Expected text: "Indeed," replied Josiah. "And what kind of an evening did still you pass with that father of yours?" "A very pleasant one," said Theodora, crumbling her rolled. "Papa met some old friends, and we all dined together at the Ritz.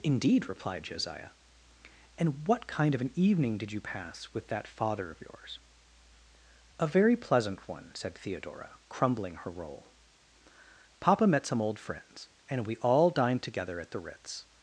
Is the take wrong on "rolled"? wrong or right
wrong